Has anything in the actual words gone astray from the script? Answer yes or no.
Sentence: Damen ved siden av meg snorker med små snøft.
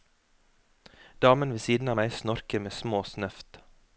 no